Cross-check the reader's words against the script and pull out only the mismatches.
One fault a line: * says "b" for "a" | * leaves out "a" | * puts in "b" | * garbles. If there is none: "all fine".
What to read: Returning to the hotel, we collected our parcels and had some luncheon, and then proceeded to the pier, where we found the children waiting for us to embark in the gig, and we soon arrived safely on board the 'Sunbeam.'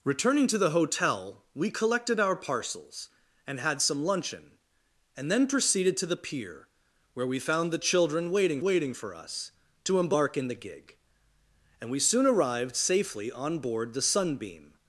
* puts in "waiting"